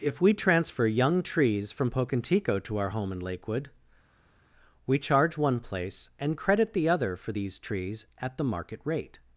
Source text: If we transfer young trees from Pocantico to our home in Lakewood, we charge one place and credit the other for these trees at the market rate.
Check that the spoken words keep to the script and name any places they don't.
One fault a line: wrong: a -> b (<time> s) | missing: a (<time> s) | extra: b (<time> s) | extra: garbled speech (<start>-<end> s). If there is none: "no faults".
no faults